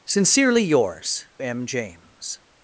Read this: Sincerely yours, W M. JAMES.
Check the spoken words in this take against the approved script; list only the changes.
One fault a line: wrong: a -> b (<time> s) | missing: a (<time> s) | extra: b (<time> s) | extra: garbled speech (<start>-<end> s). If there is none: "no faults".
missing: W (1.2 s)